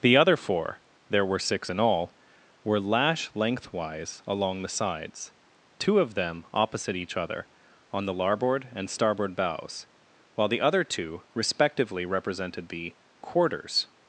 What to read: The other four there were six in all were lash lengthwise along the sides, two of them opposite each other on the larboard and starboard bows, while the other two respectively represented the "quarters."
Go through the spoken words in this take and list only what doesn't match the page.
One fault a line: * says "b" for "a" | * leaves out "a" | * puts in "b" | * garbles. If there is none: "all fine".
all fine